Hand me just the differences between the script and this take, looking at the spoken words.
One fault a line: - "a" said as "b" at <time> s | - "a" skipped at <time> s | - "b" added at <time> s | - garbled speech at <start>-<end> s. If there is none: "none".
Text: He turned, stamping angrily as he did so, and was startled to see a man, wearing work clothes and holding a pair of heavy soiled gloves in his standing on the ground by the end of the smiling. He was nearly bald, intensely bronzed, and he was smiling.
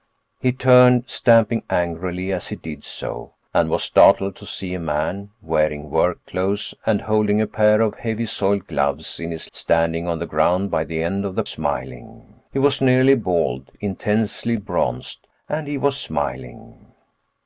none